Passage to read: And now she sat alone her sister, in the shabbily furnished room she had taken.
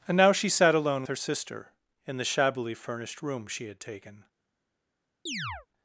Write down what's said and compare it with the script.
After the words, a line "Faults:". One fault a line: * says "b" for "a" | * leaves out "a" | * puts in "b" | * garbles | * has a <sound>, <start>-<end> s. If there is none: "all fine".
And now she sat alone her sister, in the shabbily furnished room she had taken.
Faults:
* has a chirp, 5.3-5.7 s